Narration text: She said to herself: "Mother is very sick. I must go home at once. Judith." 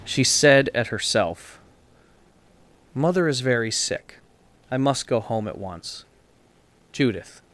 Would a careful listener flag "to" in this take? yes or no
yes